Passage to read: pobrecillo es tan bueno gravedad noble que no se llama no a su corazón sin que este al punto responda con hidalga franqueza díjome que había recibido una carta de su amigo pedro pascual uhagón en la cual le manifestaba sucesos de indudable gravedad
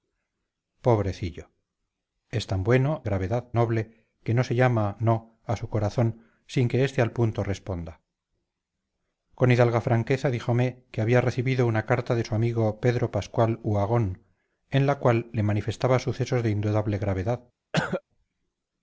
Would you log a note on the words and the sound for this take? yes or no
yes